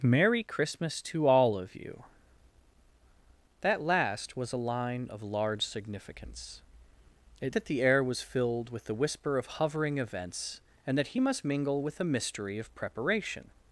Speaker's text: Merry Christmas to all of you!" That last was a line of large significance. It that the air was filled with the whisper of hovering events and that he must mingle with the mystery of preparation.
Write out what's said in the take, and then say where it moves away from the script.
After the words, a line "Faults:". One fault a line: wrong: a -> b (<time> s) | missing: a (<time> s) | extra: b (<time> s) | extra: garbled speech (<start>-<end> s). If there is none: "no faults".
Merry Christmas to all of you!" That last was a line of large significance. It that the air was filled with the whisper of hovering events and that he must mingle with the mystery of preparation.
Faults:
no faults